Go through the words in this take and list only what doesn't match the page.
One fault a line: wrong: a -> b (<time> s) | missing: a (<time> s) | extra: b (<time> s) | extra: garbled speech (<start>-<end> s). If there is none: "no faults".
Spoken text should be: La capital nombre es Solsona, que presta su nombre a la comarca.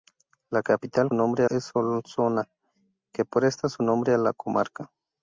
no faults